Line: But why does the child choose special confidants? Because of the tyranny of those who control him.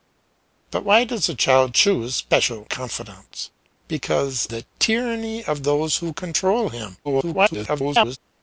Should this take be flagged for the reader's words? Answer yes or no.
yes